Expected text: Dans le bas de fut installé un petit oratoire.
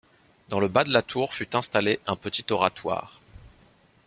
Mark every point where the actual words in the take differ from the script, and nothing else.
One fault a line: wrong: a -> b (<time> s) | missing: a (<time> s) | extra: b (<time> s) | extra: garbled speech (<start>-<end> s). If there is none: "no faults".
extra: la tour (0.9 s)